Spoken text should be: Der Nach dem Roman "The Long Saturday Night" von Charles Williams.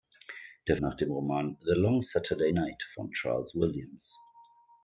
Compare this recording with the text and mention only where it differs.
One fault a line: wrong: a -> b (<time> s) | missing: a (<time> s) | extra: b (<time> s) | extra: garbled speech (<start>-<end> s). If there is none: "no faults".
no faults